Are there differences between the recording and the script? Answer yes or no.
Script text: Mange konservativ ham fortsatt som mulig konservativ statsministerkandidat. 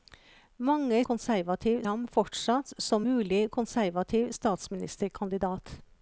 no